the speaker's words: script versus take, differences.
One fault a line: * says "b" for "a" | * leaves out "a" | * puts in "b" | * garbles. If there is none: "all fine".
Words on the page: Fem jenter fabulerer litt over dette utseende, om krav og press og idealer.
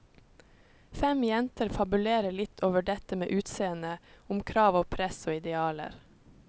* puts in "med"